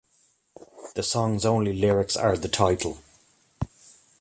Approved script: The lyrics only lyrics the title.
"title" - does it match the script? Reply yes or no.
yes